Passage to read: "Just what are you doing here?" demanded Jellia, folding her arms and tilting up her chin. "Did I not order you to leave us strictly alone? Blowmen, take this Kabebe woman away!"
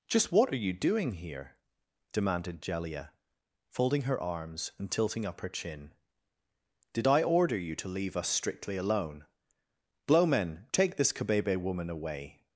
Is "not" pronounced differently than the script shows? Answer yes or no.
yes